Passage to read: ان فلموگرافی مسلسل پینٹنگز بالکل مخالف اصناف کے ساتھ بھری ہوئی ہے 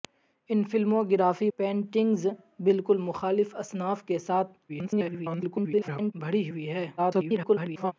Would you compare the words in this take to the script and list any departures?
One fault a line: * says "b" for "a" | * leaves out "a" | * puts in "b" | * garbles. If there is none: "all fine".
* leaves out "مسلسل"
* garbles
* garbles